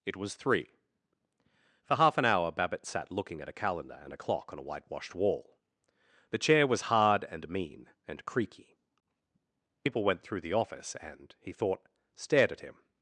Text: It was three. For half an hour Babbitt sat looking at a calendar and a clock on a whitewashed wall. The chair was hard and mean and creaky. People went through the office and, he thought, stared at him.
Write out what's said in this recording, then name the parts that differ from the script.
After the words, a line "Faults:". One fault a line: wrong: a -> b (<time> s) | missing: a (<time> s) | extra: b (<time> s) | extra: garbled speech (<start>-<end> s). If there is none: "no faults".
It was three. For half an hour Babbitt sat looking at a calendar and a clock on a whitewashed wall. The chair was hard and mean and creaky. People went through the office and, he thought, stared at him.
Faults:
no faults